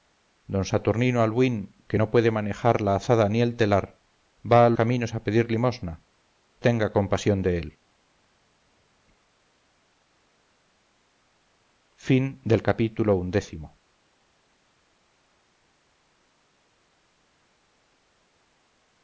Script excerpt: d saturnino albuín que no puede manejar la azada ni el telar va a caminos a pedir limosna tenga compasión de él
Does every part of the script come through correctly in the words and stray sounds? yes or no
yes